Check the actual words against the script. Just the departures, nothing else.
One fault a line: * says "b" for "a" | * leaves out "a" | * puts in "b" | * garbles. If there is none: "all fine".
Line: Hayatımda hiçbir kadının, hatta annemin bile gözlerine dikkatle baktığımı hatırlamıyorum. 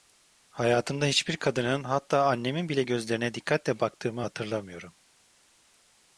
all fine